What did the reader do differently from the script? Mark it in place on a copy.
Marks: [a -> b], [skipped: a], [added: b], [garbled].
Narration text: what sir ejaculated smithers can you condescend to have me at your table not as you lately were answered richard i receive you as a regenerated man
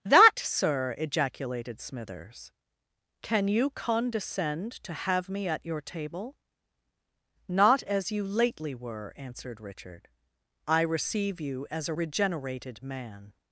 [what -> that] sir ejaculated smithers can you condescend to have me at your table not as you lately were answered richard i receive you as a regenerated man